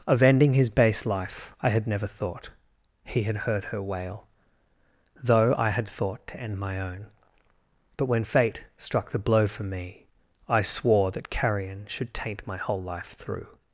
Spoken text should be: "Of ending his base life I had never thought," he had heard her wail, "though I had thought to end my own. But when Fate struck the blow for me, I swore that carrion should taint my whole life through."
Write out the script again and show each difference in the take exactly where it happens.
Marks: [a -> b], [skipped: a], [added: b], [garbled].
"Of ending his base life I had never thought," he had heard her wail, "though I had thought to end my own. But when Fate struck the blow for me, I swore that carrion should taint my whole life through."